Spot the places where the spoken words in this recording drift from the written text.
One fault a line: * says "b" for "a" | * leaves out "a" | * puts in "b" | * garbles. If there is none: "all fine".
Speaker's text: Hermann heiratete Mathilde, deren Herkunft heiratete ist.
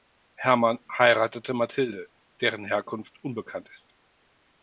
* says "unbekannt" for "heiratete"